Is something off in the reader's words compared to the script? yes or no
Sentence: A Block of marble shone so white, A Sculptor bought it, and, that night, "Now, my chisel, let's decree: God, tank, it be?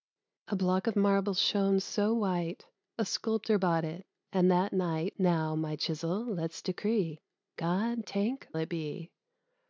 no